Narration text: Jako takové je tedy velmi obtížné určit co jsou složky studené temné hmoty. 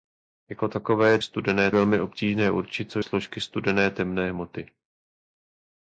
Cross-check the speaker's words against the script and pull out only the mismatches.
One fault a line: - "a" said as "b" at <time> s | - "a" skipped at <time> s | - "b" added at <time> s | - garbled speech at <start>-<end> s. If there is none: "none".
- "tedy" said as "studené" at 1.2 s
- "jsou" skipped at 3.0 s